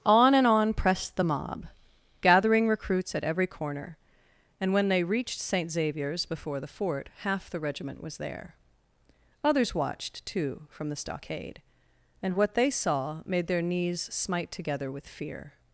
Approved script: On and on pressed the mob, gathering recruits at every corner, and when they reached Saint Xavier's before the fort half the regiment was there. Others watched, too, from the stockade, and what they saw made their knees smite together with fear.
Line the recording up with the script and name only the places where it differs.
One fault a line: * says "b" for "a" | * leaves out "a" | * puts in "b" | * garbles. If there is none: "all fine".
all fine